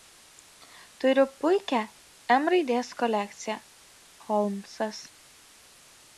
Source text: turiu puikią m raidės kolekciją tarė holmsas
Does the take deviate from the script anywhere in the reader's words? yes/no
yes